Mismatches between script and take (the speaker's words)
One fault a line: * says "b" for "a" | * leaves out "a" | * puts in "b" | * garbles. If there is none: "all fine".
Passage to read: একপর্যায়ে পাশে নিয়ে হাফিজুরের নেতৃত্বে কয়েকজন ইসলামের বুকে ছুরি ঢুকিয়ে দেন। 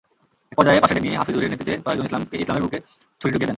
all fine